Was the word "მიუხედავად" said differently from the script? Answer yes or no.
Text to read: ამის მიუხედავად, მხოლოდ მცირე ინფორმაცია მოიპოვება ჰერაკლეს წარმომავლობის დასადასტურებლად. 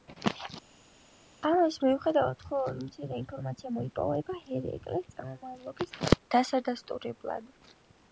no